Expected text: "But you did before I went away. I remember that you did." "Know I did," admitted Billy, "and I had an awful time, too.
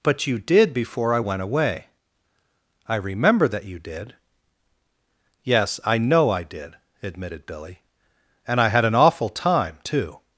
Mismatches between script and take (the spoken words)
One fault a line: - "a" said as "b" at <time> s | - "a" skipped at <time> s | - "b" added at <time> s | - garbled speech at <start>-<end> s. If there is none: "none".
- "Yes I" added at 5.4 s